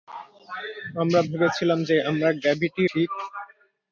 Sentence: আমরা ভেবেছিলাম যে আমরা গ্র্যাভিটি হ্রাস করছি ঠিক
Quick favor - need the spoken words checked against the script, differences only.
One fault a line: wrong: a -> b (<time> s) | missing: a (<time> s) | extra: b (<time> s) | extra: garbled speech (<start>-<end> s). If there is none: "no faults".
missing: হ্রাস করছি (2.8 s)